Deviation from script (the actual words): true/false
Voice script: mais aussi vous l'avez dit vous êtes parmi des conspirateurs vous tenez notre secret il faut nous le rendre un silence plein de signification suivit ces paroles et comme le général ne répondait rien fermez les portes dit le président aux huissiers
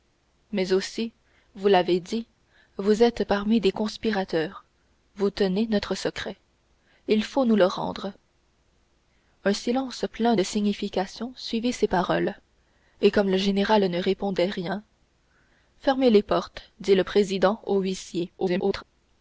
true